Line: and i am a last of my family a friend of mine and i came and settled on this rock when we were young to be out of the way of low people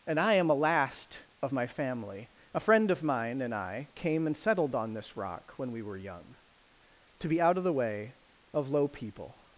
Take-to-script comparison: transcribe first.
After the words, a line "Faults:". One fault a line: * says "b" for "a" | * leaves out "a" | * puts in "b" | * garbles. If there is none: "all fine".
and i am a last of my family a friend of mine and i came and settled on this rock when we were young to be out of the way of low people
Faults:
all fine